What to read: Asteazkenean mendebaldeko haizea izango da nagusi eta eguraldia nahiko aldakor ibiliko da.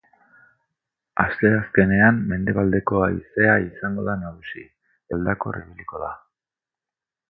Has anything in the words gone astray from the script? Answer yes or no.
yes